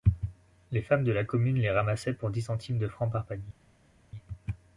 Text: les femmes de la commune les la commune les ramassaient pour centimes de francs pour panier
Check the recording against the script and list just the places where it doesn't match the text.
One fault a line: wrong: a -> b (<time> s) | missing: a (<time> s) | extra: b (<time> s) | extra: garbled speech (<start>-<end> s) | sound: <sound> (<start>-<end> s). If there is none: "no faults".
missing: la commune les (1.7 s)
extra: dix (2.3 s)
wrong: pour -> par (3.1 s)